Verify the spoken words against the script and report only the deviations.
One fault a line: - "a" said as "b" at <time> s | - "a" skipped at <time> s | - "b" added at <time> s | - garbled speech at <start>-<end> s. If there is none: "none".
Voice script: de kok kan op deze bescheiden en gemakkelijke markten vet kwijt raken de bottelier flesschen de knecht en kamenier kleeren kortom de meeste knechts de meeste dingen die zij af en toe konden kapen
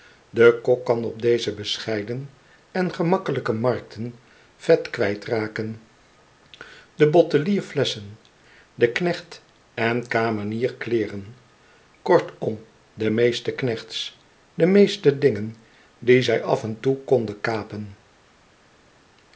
none